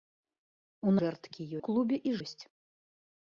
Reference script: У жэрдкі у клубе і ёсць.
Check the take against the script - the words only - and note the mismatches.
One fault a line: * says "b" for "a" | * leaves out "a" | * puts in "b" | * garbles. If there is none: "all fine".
all fine